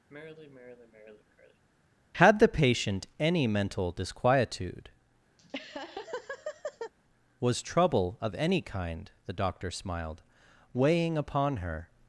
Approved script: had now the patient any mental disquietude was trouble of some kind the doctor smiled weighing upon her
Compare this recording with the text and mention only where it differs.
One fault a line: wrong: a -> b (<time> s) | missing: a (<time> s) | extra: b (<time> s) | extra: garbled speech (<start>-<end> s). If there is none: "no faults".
missing: now (2.4 s)
wrong: some -> any (8.4 s)